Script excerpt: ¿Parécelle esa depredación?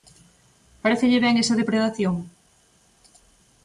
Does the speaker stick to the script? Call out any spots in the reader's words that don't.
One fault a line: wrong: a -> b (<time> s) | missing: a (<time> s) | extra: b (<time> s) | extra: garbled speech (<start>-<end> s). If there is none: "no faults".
extra: ben (1.2 s)